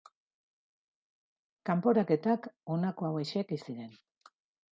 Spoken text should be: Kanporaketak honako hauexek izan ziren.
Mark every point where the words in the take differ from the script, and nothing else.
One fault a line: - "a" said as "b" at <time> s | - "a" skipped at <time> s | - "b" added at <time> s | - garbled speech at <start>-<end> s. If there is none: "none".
- "izan" skipped at 3.6 s